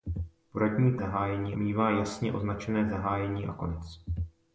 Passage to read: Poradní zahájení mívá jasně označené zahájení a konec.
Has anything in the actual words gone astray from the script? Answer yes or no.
no